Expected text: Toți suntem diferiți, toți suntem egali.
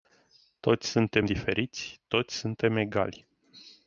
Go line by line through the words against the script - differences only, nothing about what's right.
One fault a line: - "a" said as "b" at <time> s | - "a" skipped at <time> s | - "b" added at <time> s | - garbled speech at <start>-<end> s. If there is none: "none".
none